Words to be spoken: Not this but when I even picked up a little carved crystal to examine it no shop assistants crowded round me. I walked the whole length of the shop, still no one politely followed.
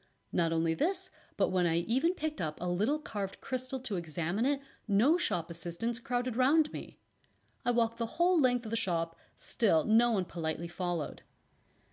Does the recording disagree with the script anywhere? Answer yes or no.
yes